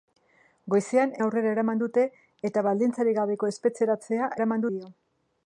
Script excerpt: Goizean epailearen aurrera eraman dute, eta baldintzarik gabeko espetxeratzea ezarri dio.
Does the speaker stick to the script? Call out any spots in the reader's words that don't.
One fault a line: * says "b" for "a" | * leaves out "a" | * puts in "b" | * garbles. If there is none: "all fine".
* leaves out "epailearen"
* says "eraman" for "ezarri"